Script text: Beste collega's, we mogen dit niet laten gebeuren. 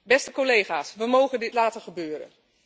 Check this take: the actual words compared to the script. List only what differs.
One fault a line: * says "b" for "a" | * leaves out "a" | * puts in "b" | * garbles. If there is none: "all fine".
* leaves out "niet"